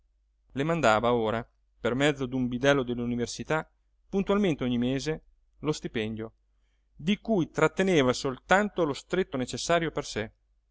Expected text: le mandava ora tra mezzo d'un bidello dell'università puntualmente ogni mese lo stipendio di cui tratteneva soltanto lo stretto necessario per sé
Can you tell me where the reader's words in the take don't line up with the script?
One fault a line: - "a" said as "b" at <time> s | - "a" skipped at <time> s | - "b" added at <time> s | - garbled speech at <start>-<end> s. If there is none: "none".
- "tra" said as "per" at 1.8 s